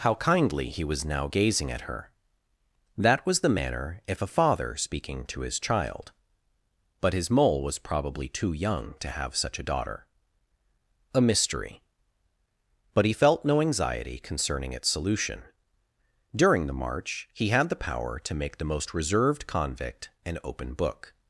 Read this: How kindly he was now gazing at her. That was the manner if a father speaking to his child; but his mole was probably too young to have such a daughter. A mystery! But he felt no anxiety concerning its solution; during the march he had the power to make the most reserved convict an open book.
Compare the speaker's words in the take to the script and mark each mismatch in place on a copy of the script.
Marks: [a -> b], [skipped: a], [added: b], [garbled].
How kindly he was now gazing at her. That was the manner if a father speaking to his child; but his mole was probably too young to have such a daughter. A mystery! But he felt no anxiety concerning its solution; during the march he had the power to make the most reserved convict an open book.